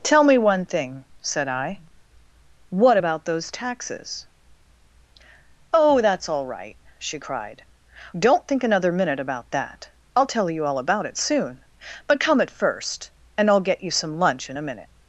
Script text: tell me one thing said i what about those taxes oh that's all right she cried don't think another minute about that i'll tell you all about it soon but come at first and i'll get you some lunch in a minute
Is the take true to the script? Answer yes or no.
yes